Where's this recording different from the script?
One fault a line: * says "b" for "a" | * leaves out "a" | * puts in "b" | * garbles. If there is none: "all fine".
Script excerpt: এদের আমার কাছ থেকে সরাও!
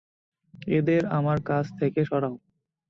all fine